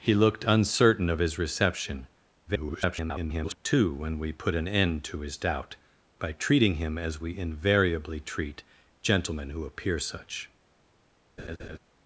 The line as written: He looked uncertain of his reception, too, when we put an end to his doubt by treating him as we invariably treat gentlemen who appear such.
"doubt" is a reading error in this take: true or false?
false